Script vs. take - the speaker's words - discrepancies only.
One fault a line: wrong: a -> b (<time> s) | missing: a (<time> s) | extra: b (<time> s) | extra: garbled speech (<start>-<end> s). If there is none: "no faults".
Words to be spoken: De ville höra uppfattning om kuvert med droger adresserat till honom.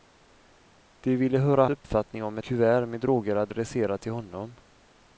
no faults